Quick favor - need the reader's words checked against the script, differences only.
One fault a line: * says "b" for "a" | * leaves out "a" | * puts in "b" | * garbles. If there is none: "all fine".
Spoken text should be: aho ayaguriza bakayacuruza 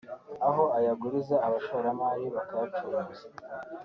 * puts in "abashoramari"